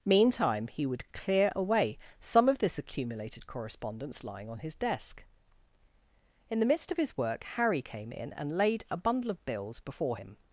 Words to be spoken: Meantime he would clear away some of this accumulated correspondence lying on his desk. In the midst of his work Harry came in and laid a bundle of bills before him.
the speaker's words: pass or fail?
pass